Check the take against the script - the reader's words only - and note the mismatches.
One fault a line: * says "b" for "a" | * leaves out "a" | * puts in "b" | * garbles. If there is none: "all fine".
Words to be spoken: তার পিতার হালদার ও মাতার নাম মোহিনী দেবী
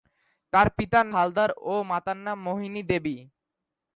all fine